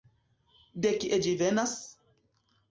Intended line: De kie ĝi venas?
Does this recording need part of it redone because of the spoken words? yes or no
no